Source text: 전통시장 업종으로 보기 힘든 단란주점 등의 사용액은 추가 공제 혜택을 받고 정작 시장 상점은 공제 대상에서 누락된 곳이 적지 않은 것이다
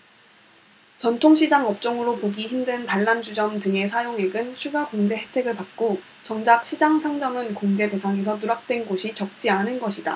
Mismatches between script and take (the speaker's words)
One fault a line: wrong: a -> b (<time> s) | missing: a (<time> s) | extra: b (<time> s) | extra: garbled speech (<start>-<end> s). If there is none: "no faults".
no faults